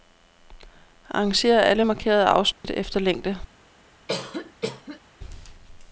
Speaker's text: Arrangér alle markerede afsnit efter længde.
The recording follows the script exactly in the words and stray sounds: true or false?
false